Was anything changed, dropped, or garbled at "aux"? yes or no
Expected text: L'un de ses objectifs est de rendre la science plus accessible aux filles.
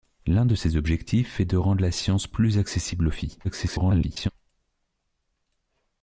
no